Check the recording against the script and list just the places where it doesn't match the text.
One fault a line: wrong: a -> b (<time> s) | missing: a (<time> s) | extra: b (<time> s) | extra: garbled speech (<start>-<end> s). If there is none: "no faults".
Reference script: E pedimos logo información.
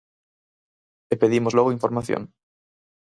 no faults